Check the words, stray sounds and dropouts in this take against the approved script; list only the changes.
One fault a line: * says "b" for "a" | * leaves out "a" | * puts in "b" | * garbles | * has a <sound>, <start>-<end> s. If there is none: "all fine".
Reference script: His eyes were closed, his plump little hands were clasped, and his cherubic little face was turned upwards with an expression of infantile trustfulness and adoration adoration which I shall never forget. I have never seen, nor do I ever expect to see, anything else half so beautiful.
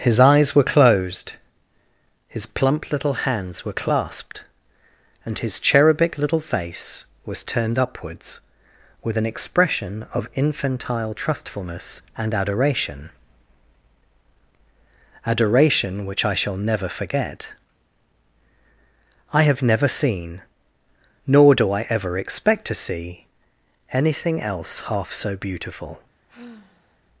* has a sigh, 26.3-27.0 s